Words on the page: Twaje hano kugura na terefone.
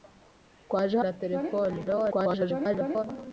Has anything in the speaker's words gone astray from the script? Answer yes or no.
yes